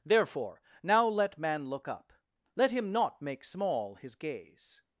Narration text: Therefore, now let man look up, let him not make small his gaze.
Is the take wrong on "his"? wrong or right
right